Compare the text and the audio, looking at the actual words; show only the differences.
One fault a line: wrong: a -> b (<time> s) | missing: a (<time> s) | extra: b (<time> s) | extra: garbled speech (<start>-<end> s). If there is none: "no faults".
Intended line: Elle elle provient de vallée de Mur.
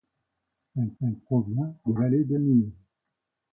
no faults